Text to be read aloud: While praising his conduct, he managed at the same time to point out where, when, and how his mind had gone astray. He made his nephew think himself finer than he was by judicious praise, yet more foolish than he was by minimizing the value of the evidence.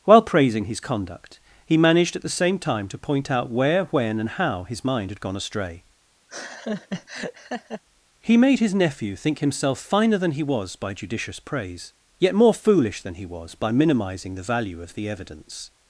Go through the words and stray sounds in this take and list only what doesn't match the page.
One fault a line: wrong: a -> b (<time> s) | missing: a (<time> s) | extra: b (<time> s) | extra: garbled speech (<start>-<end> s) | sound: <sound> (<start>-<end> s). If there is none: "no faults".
sound: laugh (6.3-7.8 s)